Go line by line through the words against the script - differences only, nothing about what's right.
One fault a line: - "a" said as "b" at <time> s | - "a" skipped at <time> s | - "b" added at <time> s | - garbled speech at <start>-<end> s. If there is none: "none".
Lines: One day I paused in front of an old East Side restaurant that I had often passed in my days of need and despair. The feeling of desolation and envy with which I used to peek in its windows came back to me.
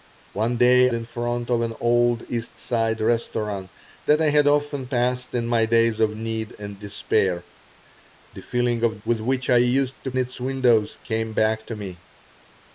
- "I paused" skipped at 0.9 s
- "desolation and envy" skipped at 9.0 s
- "peek in" skipped at 10.1 s